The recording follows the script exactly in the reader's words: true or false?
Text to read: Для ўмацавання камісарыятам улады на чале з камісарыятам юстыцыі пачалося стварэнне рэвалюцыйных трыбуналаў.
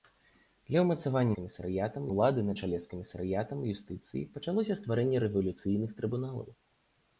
true